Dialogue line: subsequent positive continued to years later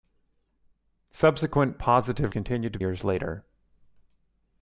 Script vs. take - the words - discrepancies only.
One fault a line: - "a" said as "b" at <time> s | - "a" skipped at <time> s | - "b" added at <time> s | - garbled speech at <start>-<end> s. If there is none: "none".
none